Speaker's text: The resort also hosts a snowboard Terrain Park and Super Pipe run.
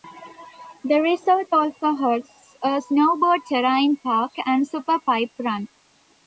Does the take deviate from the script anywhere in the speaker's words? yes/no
no